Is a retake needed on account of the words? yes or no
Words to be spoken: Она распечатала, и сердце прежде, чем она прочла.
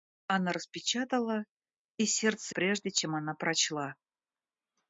no